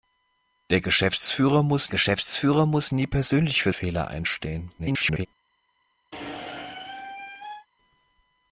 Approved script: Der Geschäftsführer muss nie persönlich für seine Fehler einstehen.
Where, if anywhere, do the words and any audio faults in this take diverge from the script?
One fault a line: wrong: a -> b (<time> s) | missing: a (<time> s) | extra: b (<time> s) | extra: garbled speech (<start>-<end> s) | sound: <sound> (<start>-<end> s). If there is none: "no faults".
extra: Geschäftsführer muss (1.9 s)
missing: seine (3.7 s)
extra: garbled speech (4.8-5.3 s)
sound: squeak (6.1-7.7 s)